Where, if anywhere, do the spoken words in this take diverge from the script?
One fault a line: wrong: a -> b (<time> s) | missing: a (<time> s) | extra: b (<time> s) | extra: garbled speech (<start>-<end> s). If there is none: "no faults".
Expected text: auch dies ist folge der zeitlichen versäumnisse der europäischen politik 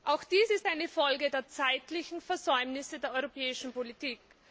extra: eine (0.7 s)